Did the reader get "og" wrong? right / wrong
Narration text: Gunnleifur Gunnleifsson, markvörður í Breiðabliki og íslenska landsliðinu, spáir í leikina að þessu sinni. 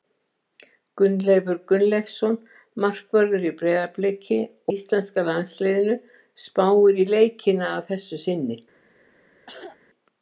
wrong